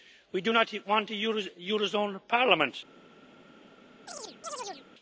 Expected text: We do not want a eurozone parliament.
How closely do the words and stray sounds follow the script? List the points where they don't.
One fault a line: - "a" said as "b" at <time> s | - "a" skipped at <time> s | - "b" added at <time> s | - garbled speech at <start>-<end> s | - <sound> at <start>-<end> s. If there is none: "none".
- chirp at 4.1-4.9 s